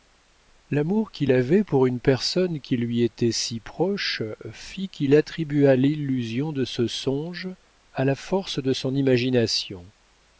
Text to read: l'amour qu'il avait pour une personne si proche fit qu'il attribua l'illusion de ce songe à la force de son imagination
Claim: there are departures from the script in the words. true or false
true